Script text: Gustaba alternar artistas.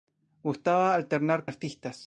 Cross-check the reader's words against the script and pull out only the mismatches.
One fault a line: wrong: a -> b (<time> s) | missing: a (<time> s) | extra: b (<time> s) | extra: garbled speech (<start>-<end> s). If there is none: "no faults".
no faults